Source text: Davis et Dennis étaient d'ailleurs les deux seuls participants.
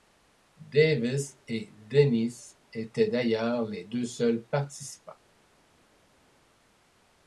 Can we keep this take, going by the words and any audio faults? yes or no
yes